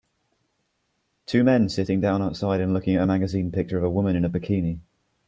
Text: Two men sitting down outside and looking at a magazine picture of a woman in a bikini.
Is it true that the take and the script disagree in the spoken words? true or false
false